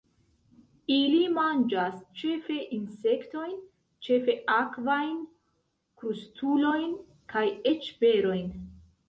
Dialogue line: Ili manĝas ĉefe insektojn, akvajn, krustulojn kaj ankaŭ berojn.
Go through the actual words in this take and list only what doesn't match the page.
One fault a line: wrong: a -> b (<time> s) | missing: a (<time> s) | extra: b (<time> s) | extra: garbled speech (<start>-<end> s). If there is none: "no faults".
extra: ĉefe (4.1 s)
wrong: ankaŭ -> eĉ (7.7 s)